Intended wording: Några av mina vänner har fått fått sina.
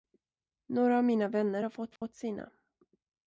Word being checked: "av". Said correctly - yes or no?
yes